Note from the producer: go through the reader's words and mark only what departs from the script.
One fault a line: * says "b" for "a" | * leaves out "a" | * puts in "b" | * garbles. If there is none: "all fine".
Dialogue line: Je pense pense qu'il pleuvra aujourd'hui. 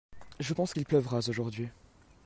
* leaves out "pense"